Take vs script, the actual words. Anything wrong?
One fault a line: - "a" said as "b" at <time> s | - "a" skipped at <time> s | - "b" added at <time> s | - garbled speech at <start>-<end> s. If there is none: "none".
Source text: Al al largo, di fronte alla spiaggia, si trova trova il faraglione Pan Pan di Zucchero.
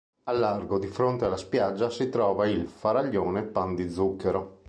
- "al" skipped at 0.4 s
- "trova" skipped at 2.5 s
- "Pan" skipped at 3.7 s